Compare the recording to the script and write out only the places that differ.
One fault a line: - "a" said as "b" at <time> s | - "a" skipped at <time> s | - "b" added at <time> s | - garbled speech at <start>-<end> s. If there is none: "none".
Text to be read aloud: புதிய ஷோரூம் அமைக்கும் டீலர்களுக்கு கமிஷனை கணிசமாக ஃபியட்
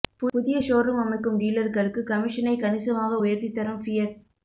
- "உயர்த்தி தரும்" added at 3.2 s